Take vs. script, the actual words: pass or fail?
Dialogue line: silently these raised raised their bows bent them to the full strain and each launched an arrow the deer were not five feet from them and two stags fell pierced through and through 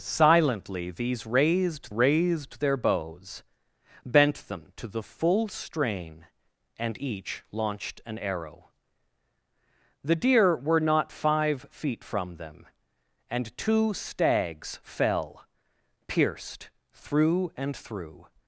pass